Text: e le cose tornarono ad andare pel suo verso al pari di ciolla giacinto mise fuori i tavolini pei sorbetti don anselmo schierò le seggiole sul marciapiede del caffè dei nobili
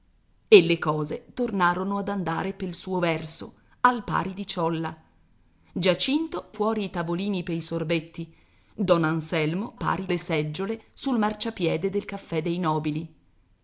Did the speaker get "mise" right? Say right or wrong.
wrong